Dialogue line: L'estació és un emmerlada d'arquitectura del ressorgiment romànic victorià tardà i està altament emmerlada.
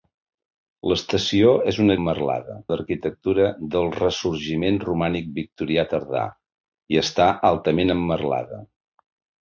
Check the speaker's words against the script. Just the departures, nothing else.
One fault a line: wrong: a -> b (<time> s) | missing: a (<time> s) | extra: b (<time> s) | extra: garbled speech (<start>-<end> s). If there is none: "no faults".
no faults